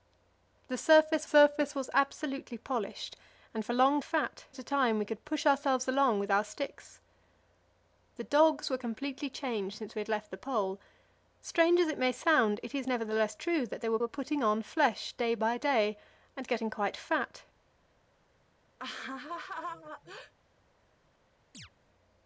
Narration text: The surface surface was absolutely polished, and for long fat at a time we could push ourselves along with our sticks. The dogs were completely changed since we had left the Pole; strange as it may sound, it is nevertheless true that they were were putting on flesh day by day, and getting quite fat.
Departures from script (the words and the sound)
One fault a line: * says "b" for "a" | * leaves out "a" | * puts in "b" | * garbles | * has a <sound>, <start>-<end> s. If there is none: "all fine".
* has a laugh, 18.8-20.3 s
* has a chirp, 21.5-21.7 s